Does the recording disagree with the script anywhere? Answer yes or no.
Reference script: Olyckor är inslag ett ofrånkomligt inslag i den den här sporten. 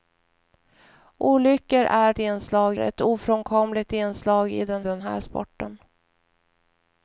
no